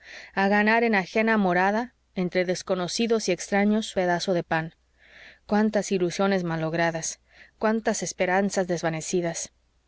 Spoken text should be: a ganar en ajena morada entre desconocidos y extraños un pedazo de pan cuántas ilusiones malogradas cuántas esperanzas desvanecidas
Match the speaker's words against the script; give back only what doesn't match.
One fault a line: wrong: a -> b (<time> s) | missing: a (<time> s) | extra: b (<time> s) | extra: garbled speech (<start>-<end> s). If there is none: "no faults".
missing: un (4.0 s)